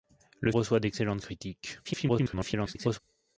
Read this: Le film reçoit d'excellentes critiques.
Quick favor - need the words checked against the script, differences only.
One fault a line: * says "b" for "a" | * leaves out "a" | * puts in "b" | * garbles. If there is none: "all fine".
* leaves out "film"
* garbles